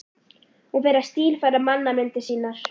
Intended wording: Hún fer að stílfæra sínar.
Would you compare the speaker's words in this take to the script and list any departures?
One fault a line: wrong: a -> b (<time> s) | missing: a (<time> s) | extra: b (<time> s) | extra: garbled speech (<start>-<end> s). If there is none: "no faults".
extra: mannamyndir (1.7 s)